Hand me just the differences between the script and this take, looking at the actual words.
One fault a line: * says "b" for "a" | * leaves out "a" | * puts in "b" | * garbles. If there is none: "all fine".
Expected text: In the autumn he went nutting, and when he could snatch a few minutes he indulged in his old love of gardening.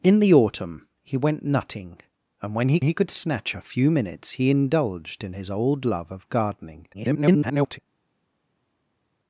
* puts in "he"
* garbles